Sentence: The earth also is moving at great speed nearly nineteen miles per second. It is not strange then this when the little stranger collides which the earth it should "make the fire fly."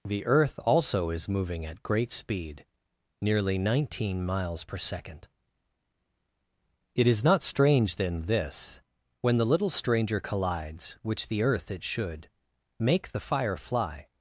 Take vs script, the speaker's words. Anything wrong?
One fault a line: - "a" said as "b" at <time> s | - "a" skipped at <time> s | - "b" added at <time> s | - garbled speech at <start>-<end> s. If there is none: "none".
none